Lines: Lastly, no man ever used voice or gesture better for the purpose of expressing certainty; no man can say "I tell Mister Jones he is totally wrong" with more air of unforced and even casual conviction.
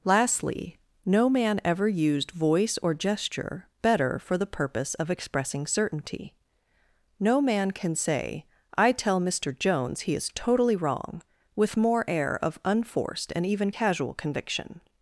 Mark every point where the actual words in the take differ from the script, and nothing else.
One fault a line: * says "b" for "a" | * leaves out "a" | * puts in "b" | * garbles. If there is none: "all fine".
all fine